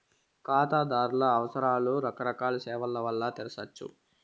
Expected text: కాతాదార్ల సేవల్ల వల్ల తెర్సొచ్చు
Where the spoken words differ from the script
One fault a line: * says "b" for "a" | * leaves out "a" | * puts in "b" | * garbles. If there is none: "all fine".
* puts in "అవసరాలు రకరకాల"